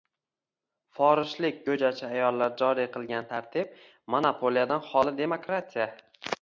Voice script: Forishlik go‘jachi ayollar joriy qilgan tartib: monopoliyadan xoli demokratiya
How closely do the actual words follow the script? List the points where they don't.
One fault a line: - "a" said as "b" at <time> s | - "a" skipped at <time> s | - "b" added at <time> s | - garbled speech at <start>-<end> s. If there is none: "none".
none